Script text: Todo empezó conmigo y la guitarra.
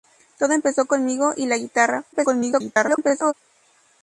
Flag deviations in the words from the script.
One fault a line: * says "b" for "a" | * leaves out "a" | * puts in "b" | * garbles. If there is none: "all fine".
* garbles